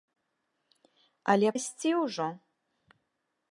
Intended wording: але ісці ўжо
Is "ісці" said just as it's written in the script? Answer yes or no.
yes